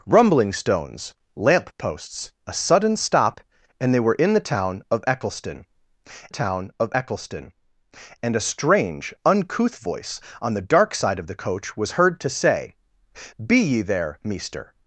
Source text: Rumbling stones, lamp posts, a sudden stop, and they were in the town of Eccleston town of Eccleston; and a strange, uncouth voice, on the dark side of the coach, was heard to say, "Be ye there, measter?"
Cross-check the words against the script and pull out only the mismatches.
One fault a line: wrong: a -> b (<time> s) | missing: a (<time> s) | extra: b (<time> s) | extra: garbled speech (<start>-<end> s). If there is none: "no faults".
no faults